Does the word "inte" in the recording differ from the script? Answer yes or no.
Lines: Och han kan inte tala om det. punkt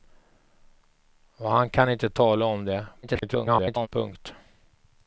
no